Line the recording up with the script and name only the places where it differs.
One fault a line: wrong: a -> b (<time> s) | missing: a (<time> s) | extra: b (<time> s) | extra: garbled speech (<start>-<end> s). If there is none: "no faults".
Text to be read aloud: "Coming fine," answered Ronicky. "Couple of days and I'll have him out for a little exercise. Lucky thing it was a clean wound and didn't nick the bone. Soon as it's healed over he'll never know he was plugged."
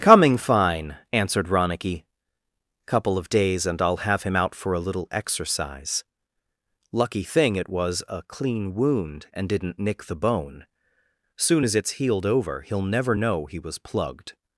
no faults